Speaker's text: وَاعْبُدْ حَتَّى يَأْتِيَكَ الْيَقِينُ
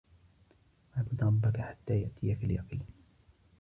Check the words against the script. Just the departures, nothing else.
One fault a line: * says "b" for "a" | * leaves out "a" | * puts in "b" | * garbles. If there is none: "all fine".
* puts in "رَبَّكَ"